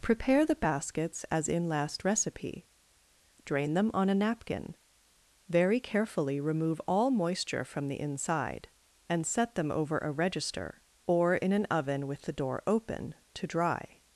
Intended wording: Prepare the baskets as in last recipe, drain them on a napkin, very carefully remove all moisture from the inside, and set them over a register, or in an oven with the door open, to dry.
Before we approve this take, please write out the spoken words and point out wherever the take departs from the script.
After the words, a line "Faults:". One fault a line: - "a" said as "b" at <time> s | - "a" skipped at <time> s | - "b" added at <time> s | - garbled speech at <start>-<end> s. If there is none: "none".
Prepare the baskets as in last recipe, drain them on a napkin, very carefully remove all moisture from the inside, and set them over a register, or in an oven with the door open, to dry.
Faults:
none